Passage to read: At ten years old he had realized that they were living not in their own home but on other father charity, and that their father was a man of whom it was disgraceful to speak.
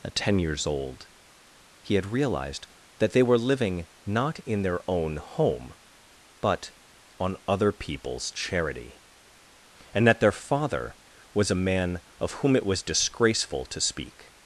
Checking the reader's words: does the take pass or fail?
fail